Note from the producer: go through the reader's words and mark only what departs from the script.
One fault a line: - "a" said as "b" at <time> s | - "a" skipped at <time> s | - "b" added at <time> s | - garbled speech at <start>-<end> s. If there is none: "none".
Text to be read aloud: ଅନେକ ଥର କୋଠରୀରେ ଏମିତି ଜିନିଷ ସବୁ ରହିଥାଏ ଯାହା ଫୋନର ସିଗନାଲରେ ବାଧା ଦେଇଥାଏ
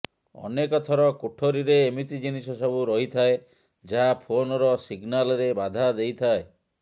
none